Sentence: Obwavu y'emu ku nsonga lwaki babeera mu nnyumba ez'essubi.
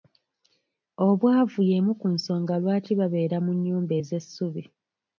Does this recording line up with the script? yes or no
yes